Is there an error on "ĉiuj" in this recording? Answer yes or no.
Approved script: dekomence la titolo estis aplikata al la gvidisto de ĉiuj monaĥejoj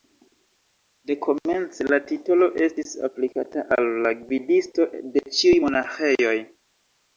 no